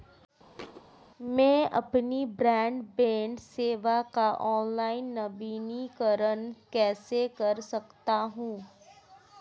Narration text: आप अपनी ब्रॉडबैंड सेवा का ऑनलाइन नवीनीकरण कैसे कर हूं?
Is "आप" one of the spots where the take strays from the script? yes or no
yes